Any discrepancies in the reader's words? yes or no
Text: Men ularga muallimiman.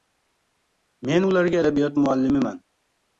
yes